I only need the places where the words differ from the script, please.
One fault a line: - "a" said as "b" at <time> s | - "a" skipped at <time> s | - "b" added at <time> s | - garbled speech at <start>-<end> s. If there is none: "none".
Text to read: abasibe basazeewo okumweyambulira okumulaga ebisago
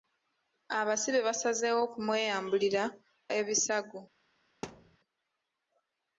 - "okumulaga" skipped at 2.8 s